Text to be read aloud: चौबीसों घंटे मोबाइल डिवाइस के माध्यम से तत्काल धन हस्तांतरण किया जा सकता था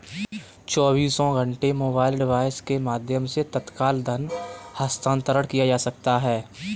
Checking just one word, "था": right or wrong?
wrong